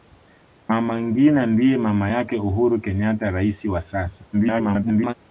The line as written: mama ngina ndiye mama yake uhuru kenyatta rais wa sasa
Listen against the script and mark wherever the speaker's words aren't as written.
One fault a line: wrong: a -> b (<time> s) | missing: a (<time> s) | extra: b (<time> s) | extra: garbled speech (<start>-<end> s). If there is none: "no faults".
extra: garbled speech (4.3-5.1 s)